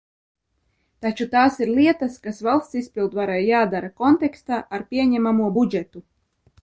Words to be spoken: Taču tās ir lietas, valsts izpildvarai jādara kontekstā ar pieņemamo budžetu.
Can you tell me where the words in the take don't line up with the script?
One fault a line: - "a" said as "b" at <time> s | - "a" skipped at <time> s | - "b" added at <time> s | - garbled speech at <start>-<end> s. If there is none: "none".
- "kas" added at 2.2 s